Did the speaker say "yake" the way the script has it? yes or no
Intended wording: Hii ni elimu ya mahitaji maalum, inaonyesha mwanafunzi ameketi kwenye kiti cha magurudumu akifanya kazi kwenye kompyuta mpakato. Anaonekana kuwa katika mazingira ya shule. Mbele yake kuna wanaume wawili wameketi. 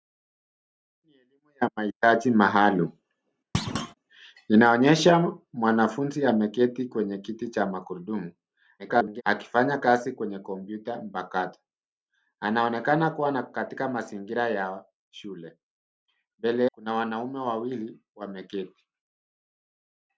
no